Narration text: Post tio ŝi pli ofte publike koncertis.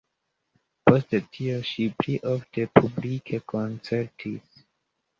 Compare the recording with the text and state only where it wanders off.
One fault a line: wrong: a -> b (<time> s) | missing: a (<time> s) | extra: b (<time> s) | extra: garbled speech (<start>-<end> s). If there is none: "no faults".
no faults